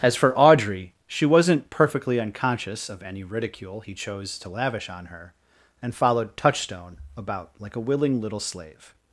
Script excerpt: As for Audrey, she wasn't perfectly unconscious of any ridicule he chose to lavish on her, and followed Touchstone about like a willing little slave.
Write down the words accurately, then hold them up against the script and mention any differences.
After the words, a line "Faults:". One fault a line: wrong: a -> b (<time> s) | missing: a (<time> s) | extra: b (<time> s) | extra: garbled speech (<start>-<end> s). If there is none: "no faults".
As for Audrey, she wasn't perfectly unconscious of any ridicule he chose to lavish on her, and followed Touchstone about like a willing little slave.
Faults:
no faults